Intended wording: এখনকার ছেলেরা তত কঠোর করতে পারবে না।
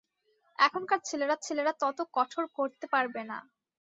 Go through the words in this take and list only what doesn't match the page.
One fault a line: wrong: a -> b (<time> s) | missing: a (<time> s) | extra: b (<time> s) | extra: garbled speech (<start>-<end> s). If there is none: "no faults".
extra: ছেলেরা (1.4 s)